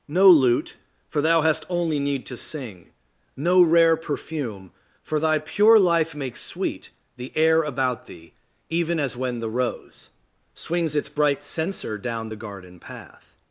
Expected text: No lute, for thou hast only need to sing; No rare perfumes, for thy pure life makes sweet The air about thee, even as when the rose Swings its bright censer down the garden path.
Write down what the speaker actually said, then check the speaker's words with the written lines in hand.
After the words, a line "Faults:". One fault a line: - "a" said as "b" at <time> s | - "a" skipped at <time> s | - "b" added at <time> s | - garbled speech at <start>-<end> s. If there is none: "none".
No lute, for thou hast only need to sing; No rare perfume, for thy pure life makes sweet The air about thee, even as when the rose Swings its bright censer down the garden path.
Faults:
- "perfumes" said as "perfume" at 4.0 s